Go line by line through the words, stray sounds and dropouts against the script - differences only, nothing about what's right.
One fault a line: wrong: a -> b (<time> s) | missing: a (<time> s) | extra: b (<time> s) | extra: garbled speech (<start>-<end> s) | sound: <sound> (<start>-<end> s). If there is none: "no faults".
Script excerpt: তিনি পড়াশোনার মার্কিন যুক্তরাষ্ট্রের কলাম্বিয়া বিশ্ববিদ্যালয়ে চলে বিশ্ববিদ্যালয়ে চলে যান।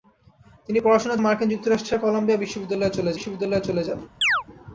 sound: chirp (4.2-4.4 s)